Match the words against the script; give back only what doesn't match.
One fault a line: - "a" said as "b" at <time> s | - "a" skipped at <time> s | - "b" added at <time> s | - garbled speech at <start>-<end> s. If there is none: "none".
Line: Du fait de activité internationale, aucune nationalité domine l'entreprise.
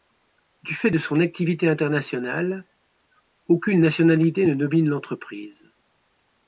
- "son" added at 1.0 s
- "ne" added at 4.4 s